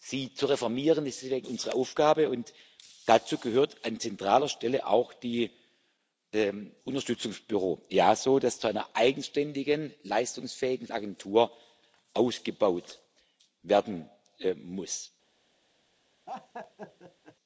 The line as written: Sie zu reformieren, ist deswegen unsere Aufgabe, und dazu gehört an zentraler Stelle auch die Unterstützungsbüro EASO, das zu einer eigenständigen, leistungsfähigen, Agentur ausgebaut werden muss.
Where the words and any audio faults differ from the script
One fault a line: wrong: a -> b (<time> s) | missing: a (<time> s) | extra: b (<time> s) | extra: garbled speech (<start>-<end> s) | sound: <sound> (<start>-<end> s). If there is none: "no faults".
sound: laugh (16.3-17.4 s)